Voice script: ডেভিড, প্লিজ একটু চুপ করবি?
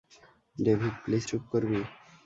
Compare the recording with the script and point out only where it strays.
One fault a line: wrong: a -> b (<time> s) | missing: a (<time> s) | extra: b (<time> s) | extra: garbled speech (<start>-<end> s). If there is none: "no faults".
missing: একটু (1.2 s)